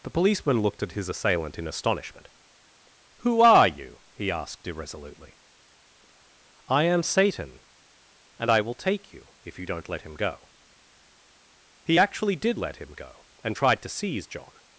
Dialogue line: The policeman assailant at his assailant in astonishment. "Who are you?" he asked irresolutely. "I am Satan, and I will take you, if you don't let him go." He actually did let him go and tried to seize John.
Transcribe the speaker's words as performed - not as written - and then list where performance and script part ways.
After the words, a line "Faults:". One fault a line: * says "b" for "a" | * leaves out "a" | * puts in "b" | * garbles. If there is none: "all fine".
The policeman looked at his assailant in astonishment. "Who are you?" he asked irresolutely. "I am Satan, and I will take you, if you don't let him go." He actually did let him go and tried to seize John.
Faults:
* says "looked" for "assailant"